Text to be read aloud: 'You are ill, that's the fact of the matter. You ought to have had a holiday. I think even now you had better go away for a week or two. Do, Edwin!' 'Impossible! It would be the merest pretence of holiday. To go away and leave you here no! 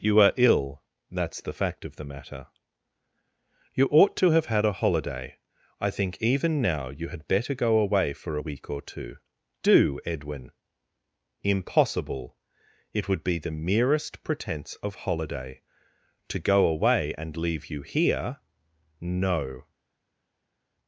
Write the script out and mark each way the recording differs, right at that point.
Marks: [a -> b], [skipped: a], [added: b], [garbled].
'You are ill, that's the fact of the matter. You ought to have had a holiday. I think even now you had better go away for a week or two. Do, Edwin!' 'Impossible! It would be the merest pretence of holiday. To go away and leave you here no!